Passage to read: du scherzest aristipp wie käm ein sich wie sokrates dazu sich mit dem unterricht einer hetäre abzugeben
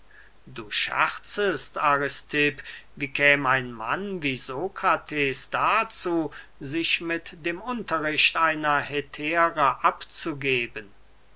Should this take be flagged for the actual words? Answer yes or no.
yes